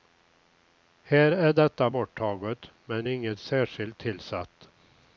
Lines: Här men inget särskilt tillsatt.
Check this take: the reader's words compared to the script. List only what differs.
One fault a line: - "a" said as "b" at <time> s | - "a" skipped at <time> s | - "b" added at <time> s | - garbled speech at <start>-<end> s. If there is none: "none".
- "är detta borttaget" added at 1.3 s